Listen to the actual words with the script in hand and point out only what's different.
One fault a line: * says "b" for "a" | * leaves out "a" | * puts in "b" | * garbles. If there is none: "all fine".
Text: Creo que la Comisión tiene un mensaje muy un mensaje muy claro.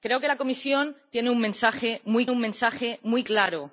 all fine